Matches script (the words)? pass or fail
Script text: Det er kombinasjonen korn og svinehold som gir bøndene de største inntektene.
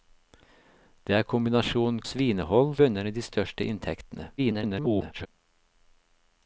fail